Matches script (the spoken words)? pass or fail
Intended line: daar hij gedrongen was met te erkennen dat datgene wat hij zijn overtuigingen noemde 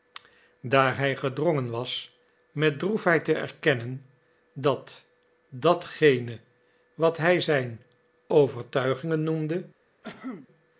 fail